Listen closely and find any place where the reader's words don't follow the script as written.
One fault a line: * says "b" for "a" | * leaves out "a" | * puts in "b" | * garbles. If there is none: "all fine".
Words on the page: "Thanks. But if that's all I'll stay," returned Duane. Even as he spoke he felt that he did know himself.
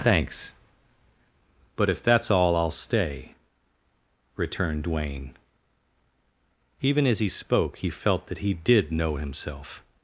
all fine